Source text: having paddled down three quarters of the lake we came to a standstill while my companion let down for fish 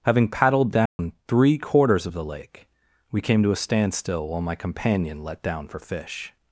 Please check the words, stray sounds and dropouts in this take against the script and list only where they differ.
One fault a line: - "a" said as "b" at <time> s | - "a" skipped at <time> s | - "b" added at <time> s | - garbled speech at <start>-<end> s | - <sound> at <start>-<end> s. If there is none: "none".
- dropout at 0.9-1.0 s